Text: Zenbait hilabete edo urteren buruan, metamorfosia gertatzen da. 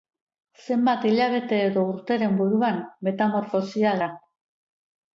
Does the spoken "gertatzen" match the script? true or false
false